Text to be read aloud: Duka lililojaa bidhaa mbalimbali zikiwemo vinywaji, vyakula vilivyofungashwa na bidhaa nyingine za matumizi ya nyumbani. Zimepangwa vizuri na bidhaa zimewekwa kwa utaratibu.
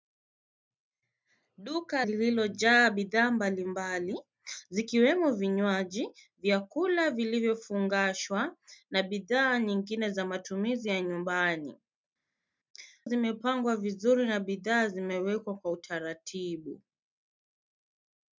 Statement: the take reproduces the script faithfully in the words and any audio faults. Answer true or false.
true